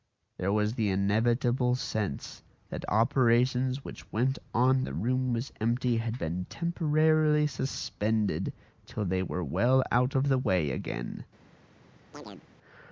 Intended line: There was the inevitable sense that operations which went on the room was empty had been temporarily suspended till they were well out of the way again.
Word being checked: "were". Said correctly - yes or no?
yes